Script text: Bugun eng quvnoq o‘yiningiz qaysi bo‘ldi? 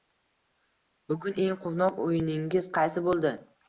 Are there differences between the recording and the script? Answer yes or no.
no